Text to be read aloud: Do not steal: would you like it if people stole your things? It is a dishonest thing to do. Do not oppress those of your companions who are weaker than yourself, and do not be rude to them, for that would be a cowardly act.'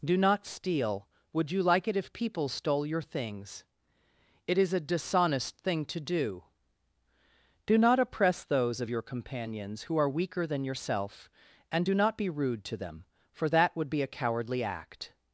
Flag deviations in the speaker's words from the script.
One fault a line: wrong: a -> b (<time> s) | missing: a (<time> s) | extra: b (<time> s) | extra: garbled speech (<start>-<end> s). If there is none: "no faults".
no faults